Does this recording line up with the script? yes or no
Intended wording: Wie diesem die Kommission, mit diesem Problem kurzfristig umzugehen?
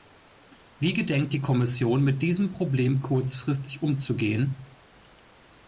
no